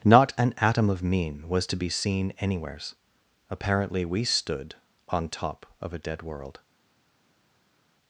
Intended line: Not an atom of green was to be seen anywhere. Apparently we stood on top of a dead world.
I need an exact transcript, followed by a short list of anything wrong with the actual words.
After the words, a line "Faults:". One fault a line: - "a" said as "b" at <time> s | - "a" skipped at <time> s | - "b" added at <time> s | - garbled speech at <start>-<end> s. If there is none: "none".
Not an atom of mean was to be seen anywheres. Apparently we stood on top of a dead world.
Faults:
- "green" said as "mean" at 1.0 s
- "anywhere" said as "anywheres" at 2.4 s